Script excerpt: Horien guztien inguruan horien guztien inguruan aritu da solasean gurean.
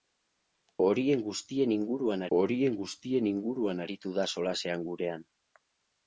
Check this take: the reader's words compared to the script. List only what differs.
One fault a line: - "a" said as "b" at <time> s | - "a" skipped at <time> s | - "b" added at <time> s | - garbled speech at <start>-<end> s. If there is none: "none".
none